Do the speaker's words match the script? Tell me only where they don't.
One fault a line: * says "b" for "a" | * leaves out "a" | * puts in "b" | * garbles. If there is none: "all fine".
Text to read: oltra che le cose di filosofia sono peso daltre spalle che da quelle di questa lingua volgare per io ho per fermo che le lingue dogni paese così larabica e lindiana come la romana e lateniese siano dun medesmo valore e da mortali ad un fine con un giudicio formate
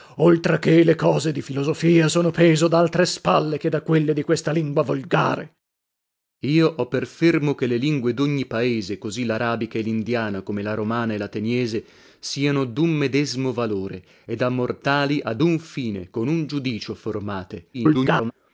* garbles